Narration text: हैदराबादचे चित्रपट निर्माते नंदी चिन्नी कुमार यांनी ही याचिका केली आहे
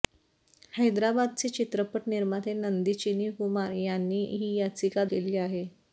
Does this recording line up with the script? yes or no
yes